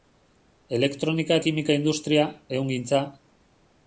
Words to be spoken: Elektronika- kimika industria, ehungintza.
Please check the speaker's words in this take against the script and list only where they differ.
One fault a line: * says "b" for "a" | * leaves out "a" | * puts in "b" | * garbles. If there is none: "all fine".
all fine